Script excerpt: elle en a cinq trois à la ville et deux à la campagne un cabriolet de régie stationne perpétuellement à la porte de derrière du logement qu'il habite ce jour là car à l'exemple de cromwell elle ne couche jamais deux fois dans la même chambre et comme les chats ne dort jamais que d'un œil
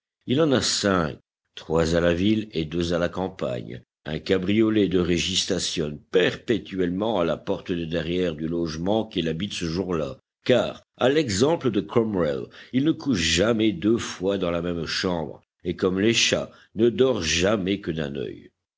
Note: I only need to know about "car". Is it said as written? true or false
true